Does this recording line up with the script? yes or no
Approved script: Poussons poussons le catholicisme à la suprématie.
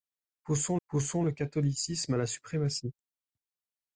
yes